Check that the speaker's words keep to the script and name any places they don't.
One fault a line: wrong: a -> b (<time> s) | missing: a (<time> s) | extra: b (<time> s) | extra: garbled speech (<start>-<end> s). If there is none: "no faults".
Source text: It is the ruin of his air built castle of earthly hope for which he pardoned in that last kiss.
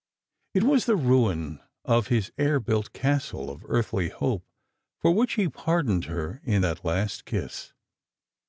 wrong: is -> was (0.6 s)
extra: her (6.0 s)